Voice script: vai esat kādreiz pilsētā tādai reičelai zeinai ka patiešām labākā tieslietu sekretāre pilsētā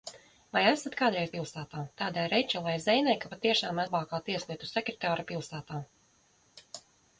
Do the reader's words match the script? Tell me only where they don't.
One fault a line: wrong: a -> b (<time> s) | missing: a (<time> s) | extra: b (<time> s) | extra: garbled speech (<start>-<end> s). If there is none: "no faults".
no faults